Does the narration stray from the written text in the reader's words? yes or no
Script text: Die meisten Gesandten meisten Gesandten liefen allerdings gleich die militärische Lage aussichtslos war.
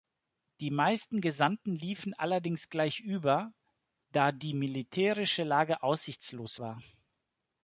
yes